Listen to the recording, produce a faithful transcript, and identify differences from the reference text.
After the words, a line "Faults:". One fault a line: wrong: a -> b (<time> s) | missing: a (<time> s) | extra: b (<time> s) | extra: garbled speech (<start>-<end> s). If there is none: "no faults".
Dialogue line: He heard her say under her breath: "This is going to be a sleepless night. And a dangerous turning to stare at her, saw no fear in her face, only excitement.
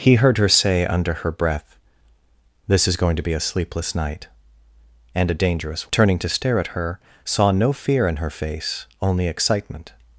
He heard her say under her breath: "This is going to be a sleepless night. And a dangerous turning to stare at her, saw no fear in her face, only excitement.
Faults:
no faults